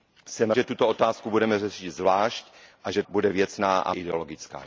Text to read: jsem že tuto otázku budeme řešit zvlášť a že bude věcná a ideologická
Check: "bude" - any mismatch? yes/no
no